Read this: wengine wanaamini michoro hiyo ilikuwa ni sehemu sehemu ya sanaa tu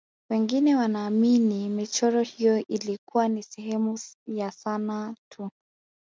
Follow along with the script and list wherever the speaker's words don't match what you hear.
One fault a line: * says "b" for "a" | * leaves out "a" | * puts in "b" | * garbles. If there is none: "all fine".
* leaves out "sehemu"